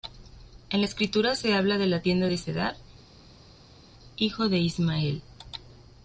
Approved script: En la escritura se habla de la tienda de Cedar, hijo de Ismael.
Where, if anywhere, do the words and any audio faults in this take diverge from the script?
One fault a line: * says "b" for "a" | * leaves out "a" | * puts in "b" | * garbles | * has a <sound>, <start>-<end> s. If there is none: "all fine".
all fine